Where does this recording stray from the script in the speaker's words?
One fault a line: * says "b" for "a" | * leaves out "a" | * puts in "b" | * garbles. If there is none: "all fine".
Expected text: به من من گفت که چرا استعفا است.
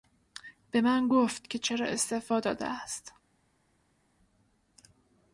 * leaves out "من"
* puts in "داده"